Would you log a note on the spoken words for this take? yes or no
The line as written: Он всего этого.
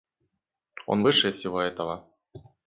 yes